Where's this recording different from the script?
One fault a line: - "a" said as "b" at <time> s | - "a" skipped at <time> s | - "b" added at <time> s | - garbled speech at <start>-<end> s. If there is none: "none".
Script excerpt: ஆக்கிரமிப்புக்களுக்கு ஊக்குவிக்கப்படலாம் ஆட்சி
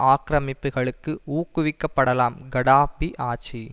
- "கடாப்பி" added at 2.5 s